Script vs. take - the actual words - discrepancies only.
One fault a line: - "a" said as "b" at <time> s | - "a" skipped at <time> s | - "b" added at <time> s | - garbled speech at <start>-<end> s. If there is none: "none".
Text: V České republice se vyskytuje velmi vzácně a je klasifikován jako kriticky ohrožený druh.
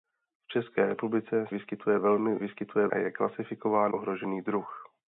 - "se" skipped at 1.4 s
- "vzácně" said as "vyskytuje" at 2.4 s
- "jako kriticky" skipped at 3.9 s